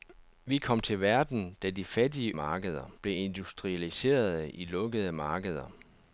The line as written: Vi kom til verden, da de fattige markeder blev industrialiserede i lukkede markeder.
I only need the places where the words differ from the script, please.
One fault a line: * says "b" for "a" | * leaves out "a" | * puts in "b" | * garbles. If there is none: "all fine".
all fine